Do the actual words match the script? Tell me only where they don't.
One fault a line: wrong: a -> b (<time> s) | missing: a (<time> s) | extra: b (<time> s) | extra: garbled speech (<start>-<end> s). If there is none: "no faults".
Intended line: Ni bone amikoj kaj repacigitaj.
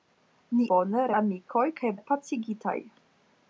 no faults